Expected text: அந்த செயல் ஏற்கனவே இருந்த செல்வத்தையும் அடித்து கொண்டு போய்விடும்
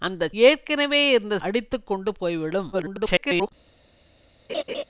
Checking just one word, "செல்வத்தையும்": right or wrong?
wrong